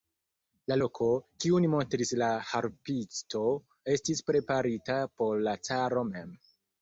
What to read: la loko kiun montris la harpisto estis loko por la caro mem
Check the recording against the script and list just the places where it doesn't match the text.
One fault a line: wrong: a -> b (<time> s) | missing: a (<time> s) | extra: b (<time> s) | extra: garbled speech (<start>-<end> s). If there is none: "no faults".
wrong: loko -> preparita (4.3 s)